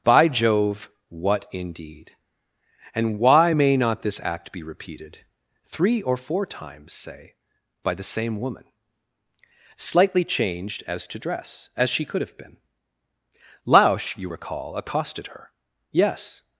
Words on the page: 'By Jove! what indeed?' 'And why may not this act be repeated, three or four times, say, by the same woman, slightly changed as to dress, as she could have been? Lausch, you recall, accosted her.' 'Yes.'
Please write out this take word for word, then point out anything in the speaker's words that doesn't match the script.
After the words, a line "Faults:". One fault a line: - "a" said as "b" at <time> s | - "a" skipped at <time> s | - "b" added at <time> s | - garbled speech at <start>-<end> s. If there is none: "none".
'By Jove! what indeed?' 'And why may not this act be repeated, three or four times, say, by the same woman, slightly changed as to dress, as she could have been? Lausch, you recall, accosted her.' 'Yes.'
Faults:
none